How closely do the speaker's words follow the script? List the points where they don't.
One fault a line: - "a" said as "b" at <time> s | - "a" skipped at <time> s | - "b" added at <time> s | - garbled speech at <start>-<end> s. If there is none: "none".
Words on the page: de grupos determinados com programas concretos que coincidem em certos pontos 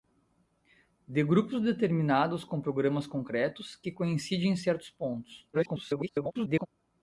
- garbled speech at 5.5-6.7 s